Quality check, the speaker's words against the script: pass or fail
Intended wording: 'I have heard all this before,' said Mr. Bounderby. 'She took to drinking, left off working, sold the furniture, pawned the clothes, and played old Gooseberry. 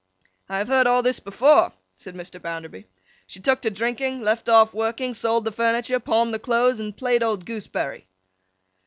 pass